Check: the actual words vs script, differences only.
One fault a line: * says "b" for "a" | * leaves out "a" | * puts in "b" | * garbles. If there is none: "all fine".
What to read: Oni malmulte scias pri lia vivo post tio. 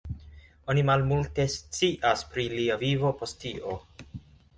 all fine